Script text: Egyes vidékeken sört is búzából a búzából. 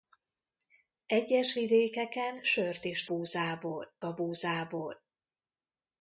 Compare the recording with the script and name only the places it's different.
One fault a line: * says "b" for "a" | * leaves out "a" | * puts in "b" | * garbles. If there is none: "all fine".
all fine